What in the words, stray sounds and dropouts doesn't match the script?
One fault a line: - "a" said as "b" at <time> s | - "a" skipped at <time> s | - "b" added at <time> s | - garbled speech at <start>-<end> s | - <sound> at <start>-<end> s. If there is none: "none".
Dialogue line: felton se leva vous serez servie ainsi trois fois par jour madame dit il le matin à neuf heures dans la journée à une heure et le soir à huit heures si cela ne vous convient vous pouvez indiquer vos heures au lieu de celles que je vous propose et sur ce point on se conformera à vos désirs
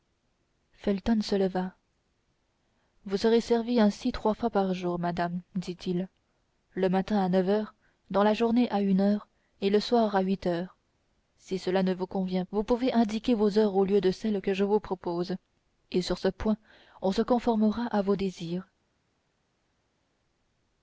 none